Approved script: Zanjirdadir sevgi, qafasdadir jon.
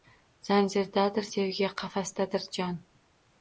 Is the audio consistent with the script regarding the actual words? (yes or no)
yes